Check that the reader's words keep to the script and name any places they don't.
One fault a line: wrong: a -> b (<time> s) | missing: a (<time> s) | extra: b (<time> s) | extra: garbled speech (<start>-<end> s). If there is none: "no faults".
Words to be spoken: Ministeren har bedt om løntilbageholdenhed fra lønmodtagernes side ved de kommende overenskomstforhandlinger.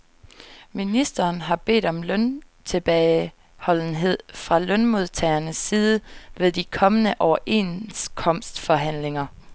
no faults